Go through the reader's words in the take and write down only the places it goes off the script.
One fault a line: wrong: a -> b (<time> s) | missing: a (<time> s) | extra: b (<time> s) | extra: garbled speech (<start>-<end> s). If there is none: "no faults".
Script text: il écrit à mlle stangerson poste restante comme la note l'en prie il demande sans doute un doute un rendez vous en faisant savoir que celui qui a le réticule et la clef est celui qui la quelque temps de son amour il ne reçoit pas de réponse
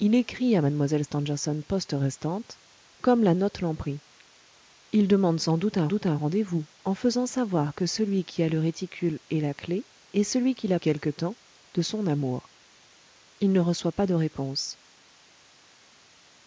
no faults